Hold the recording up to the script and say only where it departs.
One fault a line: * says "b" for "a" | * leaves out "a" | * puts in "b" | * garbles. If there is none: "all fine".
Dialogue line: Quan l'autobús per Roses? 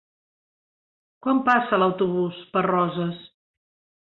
* puts in "passa"